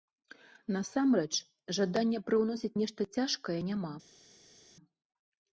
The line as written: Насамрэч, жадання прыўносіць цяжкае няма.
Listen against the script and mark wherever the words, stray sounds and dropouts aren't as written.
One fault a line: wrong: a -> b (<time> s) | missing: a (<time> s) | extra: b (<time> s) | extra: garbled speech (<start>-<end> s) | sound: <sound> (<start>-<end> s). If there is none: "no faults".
extra: нешта (2.8 s)